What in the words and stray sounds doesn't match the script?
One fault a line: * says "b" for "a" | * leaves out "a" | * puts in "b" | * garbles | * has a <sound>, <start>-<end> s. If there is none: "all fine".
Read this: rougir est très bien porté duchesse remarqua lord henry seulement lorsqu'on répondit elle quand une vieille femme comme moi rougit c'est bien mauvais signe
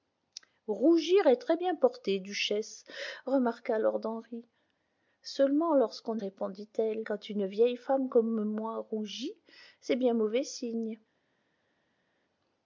all fine